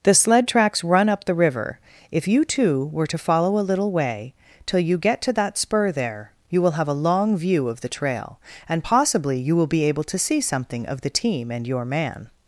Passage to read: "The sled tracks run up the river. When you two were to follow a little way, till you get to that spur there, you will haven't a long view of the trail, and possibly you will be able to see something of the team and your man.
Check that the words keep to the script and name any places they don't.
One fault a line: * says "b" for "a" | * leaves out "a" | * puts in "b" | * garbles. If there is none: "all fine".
* says "If" for "When"
* says "have" for "haven't"